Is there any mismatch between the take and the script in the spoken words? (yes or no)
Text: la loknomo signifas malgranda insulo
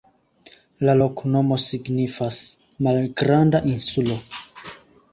no